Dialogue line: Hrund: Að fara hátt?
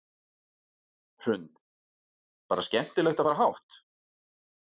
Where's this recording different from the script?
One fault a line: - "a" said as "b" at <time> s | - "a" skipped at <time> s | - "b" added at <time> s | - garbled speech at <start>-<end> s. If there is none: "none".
- "Bara skemmtilegt" added at 2.5 s